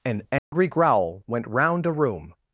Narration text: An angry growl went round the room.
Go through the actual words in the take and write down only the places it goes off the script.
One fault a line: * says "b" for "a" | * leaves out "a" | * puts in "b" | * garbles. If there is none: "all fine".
* says "a" for "the"